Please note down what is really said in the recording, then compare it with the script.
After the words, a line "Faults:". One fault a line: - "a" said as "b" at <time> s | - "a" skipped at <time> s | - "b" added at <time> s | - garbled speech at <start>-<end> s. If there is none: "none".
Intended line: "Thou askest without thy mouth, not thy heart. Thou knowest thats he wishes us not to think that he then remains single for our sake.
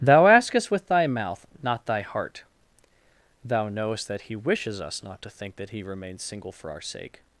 "Thou askest with thy mouth, not thy heart. Thou knowest that he wishes us not to think that he remains single for our sake.
Faults:
- "without" said as "with" at 0.7 s
- "thats" said as "that" at 4.1 s
- "then" skipped at 5.8 s